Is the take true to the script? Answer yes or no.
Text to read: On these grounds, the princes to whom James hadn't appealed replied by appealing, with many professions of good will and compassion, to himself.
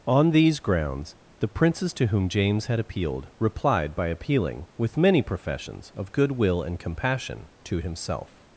no